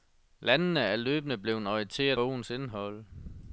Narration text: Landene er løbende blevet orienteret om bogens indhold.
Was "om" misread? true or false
true